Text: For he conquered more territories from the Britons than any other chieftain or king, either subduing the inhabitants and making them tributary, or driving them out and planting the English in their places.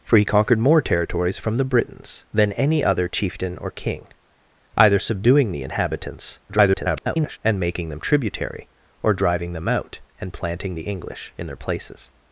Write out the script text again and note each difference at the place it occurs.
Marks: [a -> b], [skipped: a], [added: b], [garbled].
For he conquered more territories from the Britons than any other chieftain or king, either subduing the inhabitants [garbled] and making them tributary, or driving them out and planting the English in their places.